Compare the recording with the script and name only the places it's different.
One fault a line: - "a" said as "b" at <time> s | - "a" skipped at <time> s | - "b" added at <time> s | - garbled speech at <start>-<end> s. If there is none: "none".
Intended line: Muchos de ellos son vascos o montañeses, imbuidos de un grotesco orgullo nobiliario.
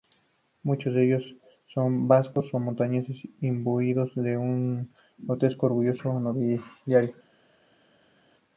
none